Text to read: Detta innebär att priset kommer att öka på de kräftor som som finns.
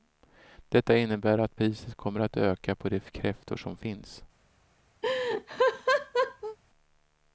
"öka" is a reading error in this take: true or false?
false